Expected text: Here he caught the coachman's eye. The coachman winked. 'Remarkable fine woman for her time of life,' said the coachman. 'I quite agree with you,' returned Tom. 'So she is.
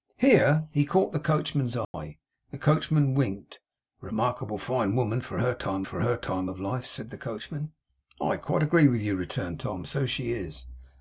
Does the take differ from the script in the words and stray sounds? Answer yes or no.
yes